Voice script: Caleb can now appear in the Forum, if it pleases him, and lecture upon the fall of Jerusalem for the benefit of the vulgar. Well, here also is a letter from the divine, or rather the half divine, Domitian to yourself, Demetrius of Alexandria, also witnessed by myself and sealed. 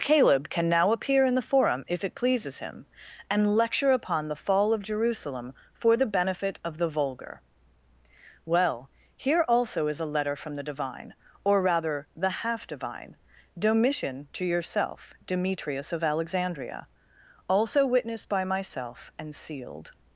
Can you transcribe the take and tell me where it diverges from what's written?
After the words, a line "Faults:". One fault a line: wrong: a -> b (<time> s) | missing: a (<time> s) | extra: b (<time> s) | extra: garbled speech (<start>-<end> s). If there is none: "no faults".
Caleb can now appear in the Forum, if it pleases him, and lecture upon the fall of Jerusalem for the benefit of the vulgar. Well, here also is a letter from the divine, or rather the half divine, Domitian to yourself, Demetrius of Alexandria, also witnessed by myself and sealed.
Faults:
no faults